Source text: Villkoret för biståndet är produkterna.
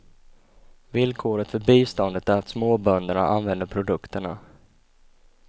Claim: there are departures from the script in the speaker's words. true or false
true